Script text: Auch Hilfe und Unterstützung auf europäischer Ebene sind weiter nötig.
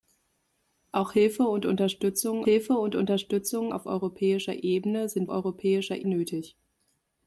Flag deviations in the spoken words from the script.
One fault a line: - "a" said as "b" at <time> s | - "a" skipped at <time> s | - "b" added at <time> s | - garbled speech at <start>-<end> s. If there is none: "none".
- "Hilfe und Unterstützung" added at 2.4 s
- "weiter" said as "europäischer" at 5.3 s